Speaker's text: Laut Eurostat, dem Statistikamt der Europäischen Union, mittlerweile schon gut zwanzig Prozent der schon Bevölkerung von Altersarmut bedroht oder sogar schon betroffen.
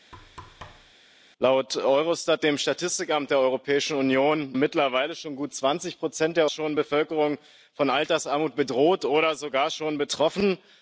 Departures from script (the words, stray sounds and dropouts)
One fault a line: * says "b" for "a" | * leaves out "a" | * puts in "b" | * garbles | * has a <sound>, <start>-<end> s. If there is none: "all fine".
* has a thud, 0.1-0.9 s